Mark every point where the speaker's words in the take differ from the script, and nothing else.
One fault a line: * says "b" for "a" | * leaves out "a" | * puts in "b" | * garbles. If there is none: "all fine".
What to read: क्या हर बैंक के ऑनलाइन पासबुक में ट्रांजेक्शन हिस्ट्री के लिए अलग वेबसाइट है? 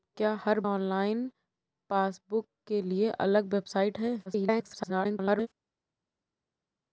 * leaves out "बैंक के"
* leaves out "में ट्रांजेक्शन हिस्ट्री"
* garbles